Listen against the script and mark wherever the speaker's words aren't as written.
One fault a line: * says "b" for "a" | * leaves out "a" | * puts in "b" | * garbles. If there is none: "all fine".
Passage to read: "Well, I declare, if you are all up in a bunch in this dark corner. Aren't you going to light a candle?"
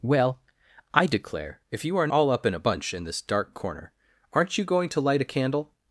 all fine